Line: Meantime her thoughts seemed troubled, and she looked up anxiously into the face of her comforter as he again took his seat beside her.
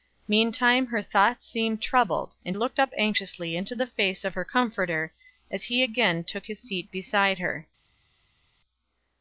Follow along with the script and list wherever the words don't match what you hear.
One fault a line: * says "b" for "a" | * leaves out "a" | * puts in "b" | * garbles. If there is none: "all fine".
* leaves out "she"